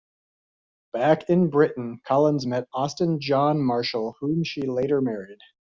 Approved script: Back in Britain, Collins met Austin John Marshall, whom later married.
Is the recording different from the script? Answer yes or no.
yes